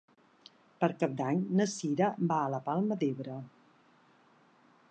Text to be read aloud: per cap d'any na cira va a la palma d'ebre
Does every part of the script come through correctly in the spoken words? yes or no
yes